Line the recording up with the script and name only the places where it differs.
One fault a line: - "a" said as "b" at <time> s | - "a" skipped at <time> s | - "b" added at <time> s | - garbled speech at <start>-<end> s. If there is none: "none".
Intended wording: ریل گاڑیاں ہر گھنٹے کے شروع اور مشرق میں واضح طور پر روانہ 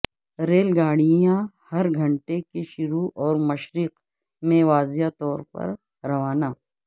none